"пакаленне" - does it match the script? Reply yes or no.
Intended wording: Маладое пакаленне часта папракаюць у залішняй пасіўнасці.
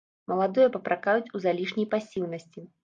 no